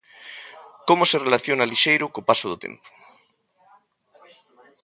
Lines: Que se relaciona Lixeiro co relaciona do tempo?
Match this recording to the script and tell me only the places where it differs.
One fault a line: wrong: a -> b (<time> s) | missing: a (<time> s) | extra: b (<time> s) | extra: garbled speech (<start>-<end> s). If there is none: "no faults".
wrong: Que -> Como (0.9 s)
wrong: relaciona -> paso (2.3 s)